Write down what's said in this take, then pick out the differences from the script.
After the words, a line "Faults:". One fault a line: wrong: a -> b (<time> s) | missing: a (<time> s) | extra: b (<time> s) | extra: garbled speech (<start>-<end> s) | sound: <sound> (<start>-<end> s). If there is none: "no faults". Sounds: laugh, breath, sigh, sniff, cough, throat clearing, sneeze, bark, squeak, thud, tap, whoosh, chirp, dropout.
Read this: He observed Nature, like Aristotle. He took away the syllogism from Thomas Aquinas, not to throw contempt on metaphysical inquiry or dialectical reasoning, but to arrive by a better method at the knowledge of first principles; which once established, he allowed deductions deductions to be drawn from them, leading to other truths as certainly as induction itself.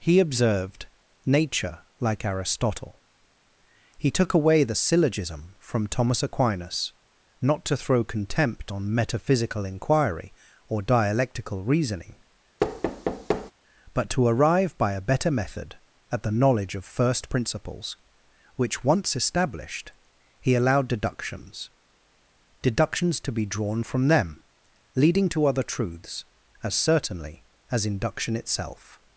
He observed Nature, like Aristotle. He took away the syllogism from Thomas Aquinas, not to throw contempt on metaphysical inquiry or dialectical reasoning, but to arrive by a better method at the knowledge of first principles; which once established, he allowed deductions deductions to be drawn from them, leading to other truths as certainly as induction itself.
Faults:
sound: thud (12.6-13.5 s)